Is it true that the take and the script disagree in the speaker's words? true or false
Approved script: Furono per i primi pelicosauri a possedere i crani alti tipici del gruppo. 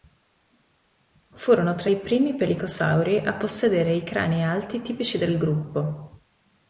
true